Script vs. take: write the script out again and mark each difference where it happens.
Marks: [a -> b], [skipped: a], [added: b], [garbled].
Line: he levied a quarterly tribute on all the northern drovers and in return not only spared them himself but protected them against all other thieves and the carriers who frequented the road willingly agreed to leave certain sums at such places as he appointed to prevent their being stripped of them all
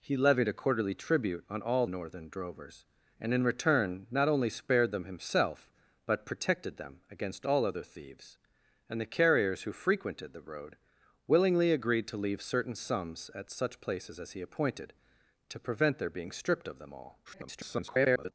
he levied a quarterly tribute on all [skipped: the] northern drovers and in return not only spared them himself but protected them against all other thieves and the carriers who frequented the road willingly agreed to leave certain sums at such places as he appointed to prevent their being stripped of them all [garbled]